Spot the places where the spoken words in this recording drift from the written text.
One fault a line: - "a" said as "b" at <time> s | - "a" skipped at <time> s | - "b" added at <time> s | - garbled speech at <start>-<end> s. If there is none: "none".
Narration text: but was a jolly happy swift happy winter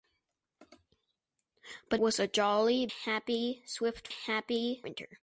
none